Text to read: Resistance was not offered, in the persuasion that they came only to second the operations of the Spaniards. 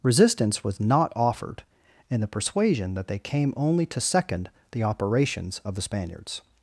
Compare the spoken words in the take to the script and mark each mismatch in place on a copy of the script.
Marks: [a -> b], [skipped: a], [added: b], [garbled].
Resistance was not offered, in the persuasion that they came only to second the operations of the Spaniards.